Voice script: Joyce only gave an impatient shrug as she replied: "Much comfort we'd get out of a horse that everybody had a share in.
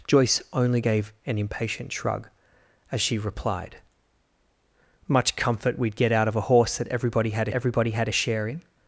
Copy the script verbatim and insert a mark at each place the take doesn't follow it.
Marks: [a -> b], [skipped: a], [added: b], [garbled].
Joyce only gave an impatient shrug as she replied: "Much comfort we'd get out of a horse that everybody had [added: everybody had] a share in.